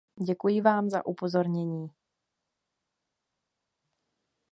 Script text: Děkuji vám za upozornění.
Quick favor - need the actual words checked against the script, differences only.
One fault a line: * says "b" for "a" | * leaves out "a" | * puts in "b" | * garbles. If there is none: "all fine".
all fine